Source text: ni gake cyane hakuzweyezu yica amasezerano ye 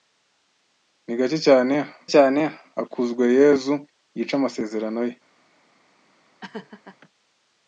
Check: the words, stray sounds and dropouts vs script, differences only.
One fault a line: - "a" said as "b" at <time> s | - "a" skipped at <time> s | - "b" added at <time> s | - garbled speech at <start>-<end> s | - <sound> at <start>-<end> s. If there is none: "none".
- "cyane" added at 2.1 s
- laugh at 6.4-7.0 s